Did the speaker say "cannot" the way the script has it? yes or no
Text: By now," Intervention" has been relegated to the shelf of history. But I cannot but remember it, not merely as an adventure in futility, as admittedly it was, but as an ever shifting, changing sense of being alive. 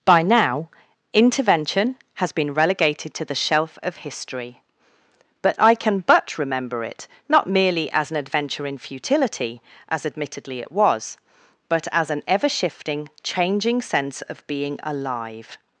no